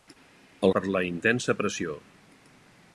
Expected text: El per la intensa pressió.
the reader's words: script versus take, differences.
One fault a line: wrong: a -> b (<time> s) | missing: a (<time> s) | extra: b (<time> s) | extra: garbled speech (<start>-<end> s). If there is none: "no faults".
no faults